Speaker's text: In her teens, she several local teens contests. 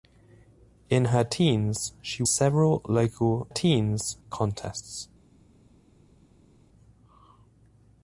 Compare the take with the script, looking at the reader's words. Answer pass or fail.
pass